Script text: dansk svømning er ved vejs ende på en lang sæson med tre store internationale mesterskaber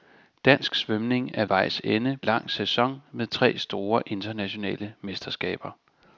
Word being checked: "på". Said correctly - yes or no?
no